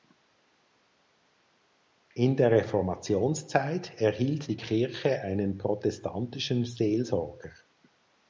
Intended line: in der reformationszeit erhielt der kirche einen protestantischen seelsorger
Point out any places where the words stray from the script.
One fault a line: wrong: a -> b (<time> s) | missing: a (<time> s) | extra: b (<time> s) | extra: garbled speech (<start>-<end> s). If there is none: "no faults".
wrong: der -> die (4.5 s)